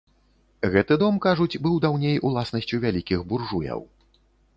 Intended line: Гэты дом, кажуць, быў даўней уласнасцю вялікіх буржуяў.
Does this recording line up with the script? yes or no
yes